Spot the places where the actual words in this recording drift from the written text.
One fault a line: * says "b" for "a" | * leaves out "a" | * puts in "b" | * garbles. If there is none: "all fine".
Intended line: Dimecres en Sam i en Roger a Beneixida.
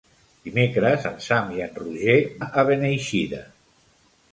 all fine